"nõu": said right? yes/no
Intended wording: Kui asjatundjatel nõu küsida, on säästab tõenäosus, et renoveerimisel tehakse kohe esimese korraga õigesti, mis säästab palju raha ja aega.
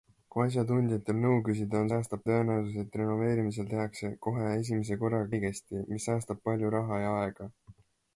yes